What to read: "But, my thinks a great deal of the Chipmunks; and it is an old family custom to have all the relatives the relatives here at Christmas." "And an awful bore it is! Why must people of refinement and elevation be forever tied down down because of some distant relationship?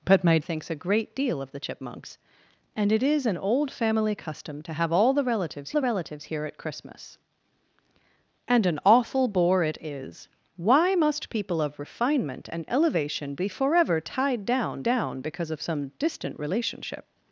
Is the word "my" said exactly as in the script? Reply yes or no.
yes